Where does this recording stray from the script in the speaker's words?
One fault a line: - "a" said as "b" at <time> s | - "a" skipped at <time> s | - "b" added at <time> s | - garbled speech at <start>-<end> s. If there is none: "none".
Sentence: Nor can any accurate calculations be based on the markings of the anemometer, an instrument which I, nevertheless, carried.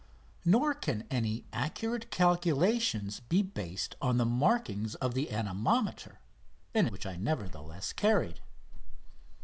- "instrument" skipped at 6.9 s